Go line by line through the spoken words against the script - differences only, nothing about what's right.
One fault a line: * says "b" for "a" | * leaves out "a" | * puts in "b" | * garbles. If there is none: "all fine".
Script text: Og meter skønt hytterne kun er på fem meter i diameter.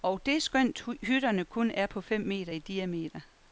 * says "det" for "meter"